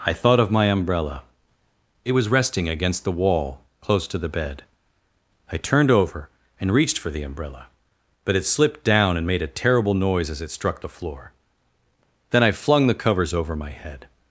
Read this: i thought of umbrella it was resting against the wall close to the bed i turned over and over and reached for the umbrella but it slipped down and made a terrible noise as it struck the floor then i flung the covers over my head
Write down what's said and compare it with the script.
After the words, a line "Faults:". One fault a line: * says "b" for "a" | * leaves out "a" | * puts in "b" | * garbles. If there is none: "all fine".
i thought of my umbrella it was resting against the wall close to the bed i turned over and reached for the umbrella but it slipped down and made a terrible noise as it struck the floor then i flung the covers over my head
Faults:
* puts in "my"
* leaves out "over and"